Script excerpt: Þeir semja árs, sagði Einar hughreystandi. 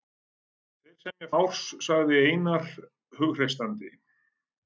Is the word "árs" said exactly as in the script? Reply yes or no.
yes